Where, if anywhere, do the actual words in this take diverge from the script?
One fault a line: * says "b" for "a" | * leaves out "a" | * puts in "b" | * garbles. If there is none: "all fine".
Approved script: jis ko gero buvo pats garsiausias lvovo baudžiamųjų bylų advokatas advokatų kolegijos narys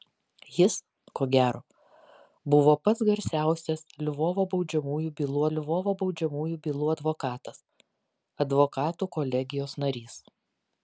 * puts in "lvovo baudžiamųjų bylų"